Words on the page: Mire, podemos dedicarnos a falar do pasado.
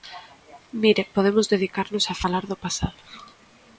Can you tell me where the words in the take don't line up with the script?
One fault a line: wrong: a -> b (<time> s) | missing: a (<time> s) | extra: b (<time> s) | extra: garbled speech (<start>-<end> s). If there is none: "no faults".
no faults